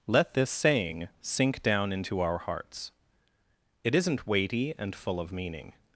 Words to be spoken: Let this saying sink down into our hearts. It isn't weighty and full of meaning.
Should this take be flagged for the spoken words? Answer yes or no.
no